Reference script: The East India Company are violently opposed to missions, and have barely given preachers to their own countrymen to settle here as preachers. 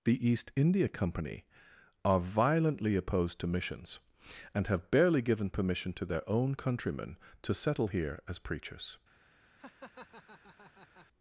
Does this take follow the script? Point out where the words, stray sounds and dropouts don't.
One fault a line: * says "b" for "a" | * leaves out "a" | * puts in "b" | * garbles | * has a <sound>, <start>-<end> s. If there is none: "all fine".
* says "permission" for "preachers"
* has a laugh, 9.6-11.1 s